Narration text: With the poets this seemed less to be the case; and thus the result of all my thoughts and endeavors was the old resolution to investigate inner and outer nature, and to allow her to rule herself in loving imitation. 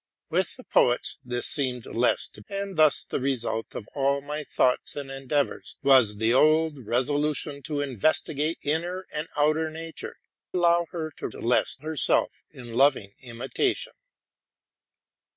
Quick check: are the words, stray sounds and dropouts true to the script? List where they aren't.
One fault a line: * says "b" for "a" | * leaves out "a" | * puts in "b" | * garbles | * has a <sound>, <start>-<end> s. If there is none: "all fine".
* leaves out "be the case"
* leaves out "and to"
* says "less" for "rule"